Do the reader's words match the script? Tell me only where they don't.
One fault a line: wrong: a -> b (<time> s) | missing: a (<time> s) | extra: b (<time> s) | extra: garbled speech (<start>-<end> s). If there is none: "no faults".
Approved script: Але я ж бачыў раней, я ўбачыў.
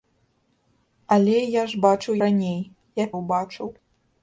no faults